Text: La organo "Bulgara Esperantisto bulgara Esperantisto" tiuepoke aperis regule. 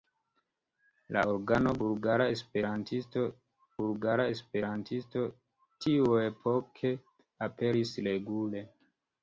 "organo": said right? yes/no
yes